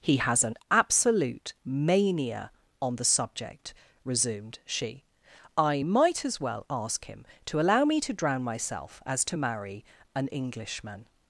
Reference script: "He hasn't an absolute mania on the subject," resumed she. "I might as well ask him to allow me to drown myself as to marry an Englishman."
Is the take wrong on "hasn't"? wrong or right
wrong